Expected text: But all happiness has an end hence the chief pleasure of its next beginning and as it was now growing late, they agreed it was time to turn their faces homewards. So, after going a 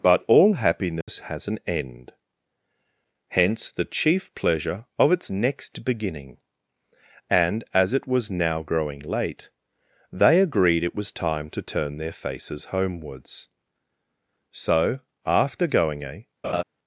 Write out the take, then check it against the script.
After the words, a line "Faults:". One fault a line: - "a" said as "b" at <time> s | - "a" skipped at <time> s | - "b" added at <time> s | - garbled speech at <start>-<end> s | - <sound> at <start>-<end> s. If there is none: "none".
But all happiness has an end hence the chief pleasure of its next beginning and as it was now growing late, they agreed it was time to turn their faces homewards. So, after going a
Faults:
- dropout at 1.0-1.1 s
- laugh at 16.4-16.6 s